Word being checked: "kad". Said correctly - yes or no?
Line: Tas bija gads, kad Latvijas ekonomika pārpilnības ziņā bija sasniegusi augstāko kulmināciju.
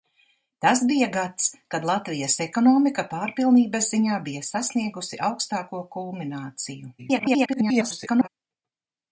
yes